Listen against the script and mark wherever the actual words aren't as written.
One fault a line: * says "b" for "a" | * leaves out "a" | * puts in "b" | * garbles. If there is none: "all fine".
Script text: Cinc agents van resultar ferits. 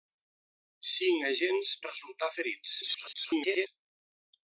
* leaves out "van"
* garbles